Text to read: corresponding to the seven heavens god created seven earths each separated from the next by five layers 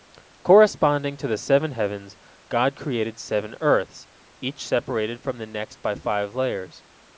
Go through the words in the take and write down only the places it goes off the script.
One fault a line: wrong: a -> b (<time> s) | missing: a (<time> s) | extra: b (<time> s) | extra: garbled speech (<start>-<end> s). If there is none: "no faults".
no faults